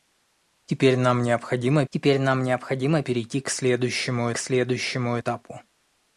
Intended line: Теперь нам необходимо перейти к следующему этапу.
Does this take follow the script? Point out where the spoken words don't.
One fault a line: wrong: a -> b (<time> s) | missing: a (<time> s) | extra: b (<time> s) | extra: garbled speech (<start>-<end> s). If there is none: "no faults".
extra: теперь нам необходимо (1.9 s)
extra: следующему (4.4 s)